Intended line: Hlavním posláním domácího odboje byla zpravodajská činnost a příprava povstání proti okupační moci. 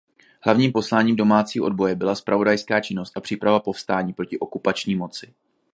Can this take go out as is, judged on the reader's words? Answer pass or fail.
pass